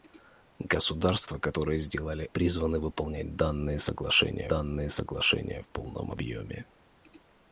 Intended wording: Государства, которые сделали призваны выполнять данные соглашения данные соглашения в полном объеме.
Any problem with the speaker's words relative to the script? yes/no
no